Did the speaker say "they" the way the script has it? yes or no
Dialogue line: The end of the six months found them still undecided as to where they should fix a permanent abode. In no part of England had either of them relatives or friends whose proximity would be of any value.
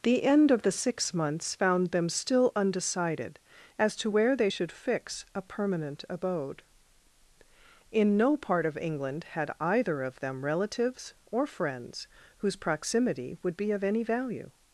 yes